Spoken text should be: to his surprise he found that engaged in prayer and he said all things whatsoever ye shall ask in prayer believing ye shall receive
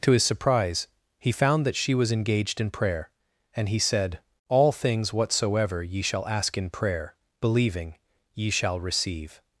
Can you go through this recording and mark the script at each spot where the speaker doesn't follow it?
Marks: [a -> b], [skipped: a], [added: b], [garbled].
to his surprise he found that [added: she was] engaged in prayer and he said all things whatsoever ye shall ask in prayer believing ye shall receive